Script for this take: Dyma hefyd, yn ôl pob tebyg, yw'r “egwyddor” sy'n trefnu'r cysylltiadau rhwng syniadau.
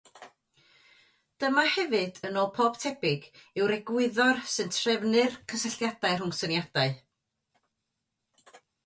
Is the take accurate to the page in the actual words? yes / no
yes